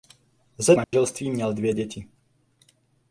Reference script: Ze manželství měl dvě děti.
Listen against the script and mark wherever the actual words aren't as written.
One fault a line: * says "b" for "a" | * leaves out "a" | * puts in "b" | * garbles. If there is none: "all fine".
all fine